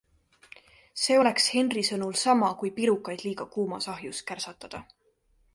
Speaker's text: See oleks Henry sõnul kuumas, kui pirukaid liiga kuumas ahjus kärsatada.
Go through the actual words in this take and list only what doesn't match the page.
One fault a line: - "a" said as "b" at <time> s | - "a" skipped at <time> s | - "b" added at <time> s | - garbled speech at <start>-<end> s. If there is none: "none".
- "kuumas" said as "sama" at 2.2 s